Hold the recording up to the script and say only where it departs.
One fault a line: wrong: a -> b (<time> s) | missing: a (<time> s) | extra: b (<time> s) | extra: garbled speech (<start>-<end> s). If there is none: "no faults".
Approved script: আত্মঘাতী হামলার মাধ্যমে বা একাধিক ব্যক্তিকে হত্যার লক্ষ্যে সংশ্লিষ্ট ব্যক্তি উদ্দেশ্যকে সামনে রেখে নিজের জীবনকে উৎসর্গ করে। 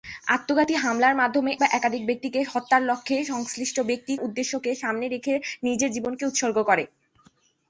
no faults